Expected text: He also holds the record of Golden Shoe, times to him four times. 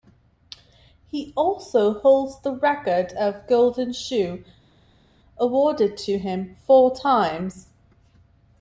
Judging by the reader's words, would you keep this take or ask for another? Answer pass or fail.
fail